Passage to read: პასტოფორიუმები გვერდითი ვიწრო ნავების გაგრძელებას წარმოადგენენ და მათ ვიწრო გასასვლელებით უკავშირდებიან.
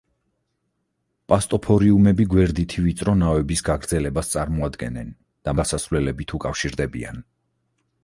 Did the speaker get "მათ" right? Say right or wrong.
wrong